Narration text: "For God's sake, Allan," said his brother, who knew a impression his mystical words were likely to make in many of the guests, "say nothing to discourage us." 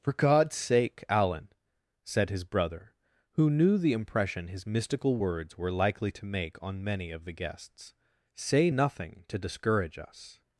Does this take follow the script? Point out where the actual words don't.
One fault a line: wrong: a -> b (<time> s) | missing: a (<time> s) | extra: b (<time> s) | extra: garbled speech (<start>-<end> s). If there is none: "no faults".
wrong: a -> the (3.8 s)
wrong: in -> on (6.6 s)